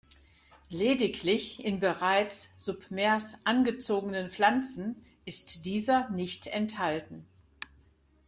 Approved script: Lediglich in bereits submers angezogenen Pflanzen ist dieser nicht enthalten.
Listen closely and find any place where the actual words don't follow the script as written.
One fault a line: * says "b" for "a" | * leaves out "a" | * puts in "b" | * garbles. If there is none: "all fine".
all fine